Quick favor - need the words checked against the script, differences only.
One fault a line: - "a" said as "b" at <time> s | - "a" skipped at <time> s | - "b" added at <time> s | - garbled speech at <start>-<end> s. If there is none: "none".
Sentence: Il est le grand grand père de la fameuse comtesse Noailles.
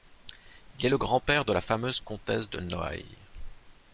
- "grand" skipped at 1.2 s
- "de" added at 2.5 s